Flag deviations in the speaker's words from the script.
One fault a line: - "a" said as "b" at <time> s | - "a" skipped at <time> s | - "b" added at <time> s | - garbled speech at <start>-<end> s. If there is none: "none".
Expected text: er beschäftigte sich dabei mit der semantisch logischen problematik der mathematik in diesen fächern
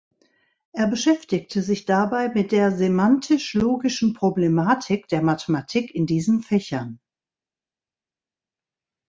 none